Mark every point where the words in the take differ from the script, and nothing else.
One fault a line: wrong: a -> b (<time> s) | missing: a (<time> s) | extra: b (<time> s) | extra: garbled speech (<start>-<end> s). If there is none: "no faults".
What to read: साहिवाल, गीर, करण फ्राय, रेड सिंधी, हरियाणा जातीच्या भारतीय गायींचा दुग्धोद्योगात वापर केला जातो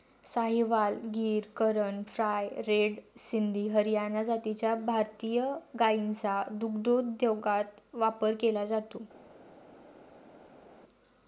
no faults